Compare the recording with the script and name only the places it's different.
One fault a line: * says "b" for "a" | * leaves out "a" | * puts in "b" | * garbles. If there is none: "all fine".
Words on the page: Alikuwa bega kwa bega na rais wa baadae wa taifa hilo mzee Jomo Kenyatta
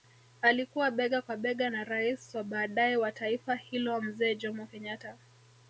all fine